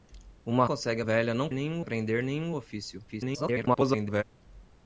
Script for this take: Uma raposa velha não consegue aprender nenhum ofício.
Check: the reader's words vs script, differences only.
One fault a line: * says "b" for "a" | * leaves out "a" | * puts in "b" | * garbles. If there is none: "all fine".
* says "consegue" for "raposa"
* says "nenhum" for "consegue"
* garbles